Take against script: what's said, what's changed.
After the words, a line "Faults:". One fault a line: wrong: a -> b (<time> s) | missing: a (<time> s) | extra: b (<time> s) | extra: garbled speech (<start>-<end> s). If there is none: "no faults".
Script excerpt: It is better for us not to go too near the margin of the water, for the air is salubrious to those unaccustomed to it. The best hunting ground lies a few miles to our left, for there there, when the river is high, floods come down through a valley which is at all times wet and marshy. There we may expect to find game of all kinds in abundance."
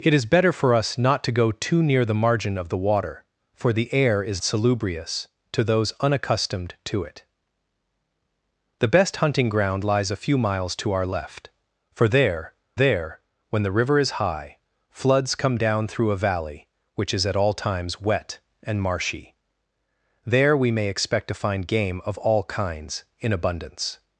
It is better for us not to go too near the margin of the water, for the air is salubrious to those unaccustomed to it. The best hunting ground lies a few miles to our left, for there there, when the river is high, floods come down through a valley which is at all times wet and marshy. There we may expect to find game of all kinds in abundance."
Faults:
no faults